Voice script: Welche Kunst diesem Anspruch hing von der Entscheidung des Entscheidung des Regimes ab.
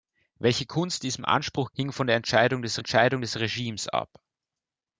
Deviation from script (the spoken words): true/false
false